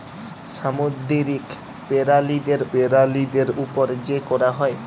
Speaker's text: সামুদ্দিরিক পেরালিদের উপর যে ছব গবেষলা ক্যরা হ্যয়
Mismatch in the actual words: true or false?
true